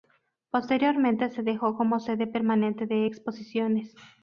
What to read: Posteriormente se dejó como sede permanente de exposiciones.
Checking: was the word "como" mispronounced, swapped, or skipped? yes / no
no